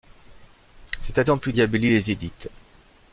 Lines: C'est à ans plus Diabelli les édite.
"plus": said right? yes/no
yes